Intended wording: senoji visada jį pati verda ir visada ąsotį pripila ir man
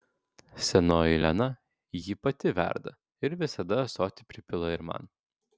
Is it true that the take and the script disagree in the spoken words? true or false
true